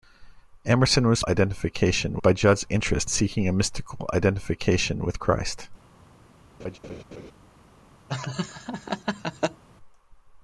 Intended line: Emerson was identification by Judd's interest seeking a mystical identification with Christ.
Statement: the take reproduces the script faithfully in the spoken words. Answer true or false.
true